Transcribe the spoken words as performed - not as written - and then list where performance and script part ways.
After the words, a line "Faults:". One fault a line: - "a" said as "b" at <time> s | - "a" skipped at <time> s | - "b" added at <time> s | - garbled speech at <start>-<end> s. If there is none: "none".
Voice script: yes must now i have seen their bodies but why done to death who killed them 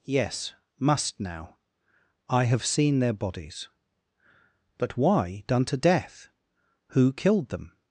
yes must now i have seen their bodies but why done to death who killed them
Faults:
none